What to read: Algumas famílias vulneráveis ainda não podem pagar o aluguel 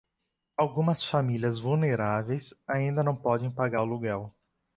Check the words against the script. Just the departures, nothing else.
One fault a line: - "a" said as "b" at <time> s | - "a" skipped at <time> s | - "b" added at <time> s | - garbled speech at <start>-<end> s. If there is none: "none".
none